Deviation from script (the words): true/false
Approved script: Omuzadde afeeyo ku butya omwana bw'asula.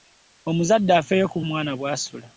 true